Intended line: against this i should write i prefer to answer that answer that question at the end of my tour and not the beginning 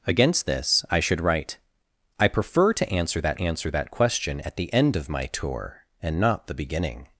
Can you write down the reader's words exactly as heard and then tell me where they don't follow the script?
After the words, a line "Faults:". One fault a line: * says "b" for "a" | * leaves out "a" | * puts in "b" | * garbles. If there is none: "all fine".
against this i should write i prefer to answer that answer that question at the end of my tour and not the beginning
Faults:
all fine